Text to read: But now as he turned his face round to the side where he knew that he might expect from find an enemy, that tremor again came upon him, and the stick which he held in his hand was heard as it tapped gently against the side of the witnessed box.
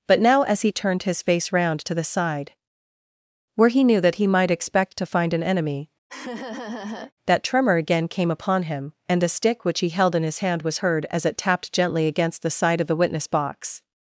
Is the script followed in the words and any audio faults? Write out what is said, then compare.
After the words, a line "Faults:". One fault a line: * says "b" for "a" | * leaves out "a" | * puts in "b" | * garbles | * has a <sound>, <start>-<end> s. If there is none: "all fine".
But now as he turned his face round to the side where he knew that he might expect to find an enemy, that tremor again came upon him, and the stick which he held in his hand was heard as it tapped gently against the side of the witness box.
Faults:
* says "to" for "from"
* has a laugh, 6.1-7.1 s
* says "witness" for "witnessed"